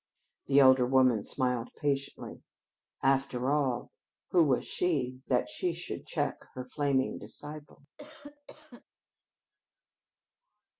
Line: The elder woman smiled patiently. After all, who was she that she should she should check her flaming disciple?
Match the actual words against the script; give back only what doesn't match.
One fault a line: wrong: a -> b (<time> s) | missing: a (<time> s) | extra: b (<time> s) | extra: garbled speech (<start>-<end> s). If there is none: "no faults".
missing: she should (6.0 s)